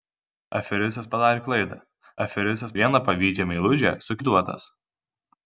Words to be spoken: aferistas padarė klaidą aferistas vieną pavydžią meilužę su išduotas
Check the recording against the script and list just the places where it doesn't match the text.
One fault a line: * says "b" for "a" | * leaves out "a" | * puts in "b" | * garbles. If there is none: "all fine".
all fine